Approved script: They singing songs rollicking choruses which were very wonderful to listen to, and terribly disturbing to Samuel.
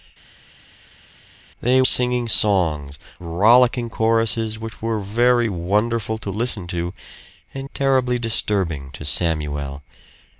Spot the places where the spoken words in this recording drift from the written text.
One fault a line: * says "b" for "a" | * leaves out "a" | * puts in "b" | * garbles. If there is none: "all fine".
all fine